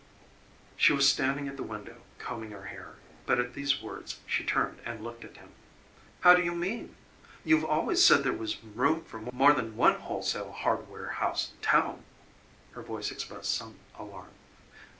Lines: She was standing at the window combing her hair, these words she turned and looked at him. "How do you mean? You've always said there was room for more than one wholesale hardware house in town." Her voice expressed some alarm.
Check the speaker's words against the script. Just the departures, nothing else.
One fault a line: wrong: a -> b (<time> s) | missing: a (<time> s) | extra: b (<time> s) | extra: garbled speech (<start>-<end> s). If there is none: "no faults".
extra: but at (3.2 s)